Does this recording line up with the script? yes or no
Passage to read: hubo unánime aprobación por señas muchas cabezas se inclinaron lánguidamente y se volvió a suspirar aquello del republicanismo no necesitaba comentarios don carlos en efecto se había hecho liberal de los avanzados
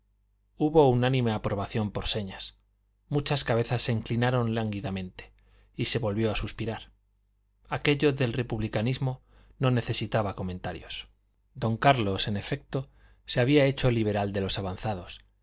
yes